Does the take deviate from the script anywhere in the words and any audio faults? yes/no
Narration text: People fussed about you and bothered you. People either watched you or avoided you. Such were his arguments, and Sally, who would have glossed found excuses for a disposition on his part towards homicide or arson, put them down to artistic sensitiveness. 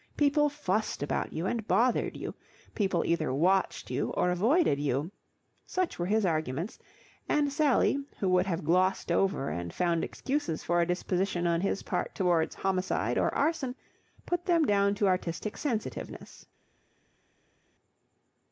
yes